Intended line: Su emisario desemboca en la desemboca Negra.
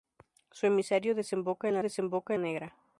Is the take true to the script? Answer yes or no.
yes